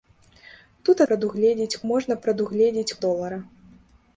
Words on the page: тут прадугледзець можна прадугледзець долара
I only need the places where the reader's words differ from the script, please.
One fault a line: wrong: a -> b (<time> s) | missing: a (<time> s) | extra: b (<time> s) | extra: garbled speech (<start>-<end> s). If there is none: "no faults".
no faults